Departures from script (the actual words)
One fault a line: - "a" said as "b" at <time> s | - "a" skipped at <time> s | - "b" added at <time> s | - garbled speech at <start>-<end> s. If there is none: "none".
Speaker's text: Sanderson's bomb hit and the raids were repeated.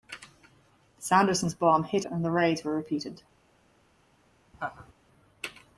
none